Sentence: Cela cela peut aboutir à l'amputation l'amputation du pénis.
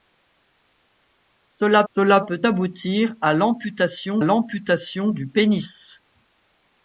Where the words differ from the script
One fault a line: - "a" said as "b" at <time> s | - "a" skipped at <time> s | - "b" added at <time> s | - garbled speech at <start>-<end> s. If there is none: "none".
none